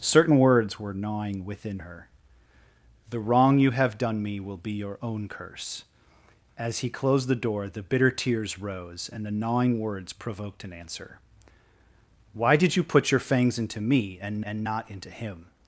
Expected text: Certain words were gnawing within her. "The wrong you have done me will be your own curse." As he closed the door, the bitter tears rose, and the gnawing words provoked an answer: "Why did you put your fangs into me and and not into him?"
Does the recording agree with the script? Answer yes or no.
yes